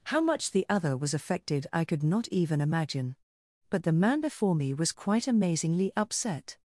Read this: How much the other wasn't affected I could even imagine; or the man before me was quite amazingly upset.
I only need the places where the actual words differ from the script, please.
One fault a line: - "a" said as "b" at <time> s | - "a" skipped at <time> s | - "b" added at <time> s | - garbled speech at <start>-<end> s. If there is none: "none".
- "wasn't" said as "was" at 0.9 s
- "not" added at 2.0 s
- "or" said as "but" at 3.7 s